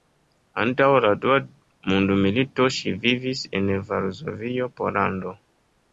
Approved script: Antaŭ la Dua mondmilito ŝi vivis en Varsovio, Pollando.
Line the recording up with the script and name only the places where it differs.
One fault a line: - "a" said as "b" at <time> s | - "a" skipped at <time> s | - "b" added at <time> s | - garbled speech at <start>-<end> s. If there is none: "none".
none